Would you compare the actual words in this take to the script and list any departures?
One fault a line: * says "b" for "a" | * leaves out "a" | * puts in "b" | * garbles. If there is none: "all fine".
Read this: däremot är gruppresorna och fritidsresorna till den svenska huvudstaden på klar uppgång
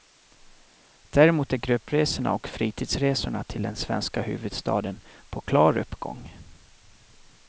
all fine